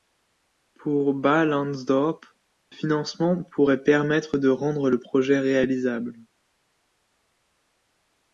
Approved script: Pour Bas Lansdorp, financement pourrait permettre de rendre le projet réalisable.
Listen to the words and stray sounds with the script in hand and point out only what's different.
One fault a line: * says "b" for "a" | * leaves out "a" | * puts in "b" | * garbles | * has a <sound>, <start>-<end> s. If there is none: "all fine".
all fine